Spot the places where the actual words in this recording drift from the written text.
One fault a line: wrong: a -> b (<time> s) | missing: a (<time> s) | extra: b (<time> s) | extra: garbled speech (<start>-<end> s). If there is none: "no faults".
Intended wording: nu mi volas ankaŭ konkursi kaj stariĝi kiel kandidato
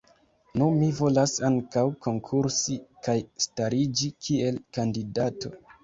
no faults